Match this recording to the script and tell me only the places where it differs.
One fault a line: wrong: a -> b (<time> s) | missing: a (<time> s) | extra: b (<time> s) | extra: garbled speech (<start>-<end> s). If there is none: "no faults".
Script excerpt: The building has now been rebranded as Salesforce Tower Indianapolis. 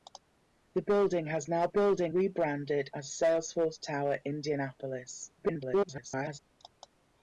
wrong: been -> building (1.7 s)
extra: garbled speech (5.4-6.4 s)